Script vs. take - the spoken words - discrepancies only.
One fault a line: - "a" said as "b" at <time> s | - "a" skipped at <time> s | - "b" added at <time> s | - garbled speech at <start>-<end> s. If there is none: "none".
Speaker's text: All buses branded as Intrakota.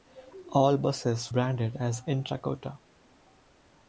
none